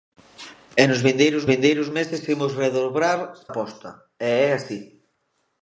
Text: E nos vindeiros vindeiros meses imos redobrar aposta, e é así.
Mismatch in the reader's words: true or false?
false